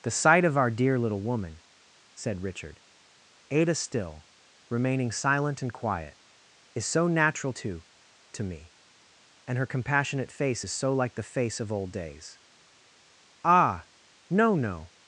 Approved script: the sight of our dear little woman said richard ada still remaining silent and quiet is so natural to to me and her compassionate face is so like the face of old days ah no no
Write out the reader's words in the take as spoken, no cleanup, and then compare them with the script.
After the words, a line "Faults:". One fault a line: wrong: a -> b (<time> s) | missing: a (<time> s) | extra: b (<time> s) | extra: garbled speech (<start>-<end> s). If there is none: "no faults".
the sight of our dear little woman said richard ada still remaining silent and quiet is so natural to to me and her compassionate face is so like the face of old days ah no no
Faults:
no faults